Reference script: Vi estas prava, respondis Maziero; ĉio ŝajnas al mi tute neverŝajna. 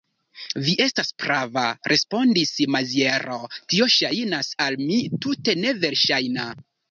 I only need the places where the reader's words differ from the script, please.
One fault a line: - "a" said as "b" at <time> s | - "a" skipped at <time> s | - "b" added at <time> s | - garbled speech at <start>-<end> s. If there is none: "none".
- "ĉio" said as "tio" at 3.7 s